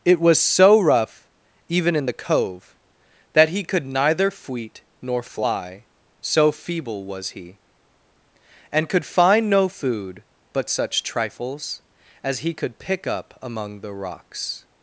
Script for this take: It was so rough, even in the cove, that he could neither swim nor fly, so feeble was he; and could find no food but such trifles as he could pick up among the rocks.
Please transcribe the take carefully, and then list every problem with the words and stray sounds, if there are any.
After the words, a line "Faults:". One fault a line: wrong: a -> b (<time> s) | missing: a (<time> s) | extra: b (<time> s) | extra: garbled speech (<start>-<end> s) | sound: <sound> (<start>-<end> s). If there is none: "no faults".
It was so rough, even in the cove, that he could neither fweet nor fly, so feeble was he; and could find no food but such trifles as he could pick up among the rocks.
Faults:
wrong: swim -> fweet (4.3 s)